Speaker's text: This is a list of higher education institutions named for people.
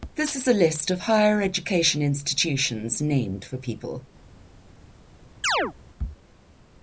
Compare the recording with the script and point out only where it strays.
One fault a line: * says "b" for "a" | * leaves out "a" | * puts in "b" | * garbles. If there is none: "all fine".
all fine